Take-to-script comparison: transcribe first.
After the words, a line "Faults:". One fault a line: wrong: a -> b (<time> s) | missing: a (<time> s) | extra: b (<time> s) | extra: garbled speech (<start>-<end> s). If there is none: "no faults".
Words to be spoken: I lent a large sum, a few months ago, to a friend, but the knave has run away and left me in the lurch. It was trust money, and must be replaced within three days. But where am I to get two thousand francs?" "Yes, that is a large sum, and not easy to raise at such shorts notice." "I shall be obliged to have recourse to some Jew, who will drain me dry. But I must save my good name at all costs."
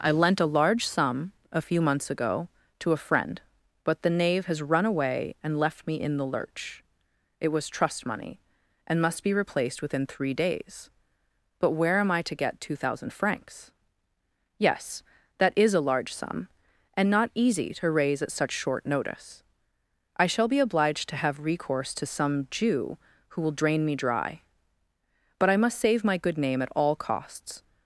I lent a large sum, a few months ago, to a friend, but the knave has run away and left me in the lurch. It was trust money, and must be replaced within three days. But where am I to get two thousand francs?" "Yes, that is a large sum, and not easy to raise at such short notice." "I shall be obliged to have recourse to some Jew, who will drain me dry. But I must save my good name at all costs."
Faults:
wrong: shorts -> short (18.5 s)